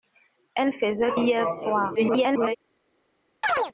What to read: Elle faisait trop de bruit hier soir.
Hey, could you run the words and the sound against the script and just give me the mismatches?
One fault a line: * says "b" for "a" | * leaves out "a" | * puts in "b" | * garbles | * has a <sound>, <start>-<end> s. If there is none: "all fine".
* leaves out "trop de bruit"
* garbles
* has a chirp, 3.4-3.7 s